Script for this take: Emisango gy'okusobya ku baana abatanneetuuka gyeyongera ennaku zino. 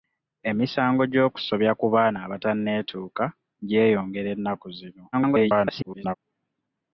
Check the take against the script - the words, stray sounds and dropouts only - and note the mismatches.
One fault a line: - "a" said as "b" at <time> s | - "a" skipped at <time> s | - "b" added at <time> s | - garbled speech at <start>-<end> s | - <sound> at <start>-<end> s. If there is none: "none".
- garbled speech at 5.1-6.1 s